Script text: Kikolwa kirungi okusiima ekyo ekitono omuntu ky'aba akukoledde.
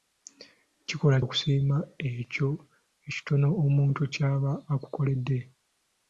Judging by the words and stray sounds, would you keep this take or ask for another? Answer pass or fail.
fail